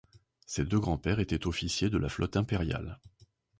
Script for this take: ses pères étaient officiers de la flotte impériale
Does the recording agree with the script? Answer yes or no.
no